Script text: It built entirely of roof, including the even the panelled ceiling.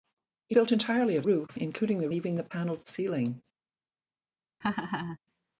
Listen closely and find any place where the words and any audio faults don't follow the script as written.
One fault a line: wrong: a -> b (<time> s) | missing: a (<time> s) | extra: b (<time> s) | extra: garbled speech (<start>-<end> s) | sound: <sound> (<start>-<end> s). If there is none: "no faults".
sound: laugh (4.6-5.2 s)